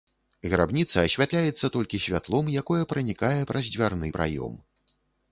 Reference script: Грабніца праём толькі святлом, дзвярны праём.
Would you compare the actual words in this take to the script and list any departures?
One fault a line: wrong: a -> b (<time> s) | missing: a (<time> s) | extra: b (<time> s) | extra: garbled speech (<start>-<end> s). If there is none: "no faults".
wrong: праём -> асвятляецца (1.1 s)
extra: якое пранікае праз (2.6 s)